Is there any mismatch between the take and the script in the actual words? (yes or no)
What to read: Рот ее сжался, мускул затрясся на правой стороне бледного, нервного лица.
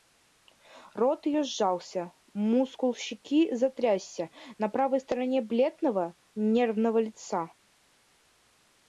yes